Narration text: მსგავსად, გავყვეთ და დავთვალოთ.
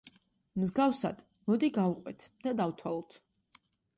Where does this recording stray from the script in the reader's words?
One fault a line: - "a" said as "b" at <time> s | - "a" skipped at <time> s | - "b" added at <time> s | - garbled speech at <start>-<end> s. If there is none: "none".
- "მოდი" added at 1.5 s